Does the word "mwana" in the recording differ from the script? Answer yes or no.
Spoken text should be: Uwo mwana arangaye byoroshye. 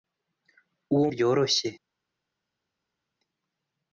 yes